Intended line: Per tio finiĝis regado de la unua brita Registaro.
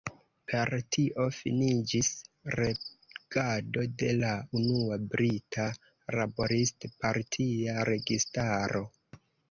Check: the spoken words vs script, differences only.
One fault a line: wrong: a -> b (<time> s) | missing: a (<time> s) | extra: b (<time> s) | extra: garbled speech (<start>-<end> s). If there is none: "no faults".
extra: Laborist partia (6.2 s)